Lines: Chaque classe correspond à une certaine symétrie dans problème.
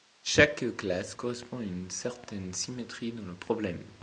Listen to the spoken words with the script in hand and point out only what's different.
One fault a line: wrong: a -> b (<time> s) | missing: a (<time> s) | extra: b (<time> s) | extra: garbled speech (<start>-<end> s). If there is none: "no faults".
extra: le (3.2 s)